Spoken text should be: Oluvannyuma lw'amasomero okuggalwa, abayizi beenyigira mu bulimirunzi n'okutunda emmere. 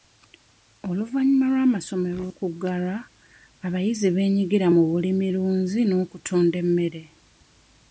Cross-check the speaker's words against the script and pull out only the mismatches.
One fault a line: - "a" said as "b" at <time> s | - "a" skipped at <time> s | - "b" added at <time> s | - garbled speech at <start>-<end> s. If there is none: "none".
none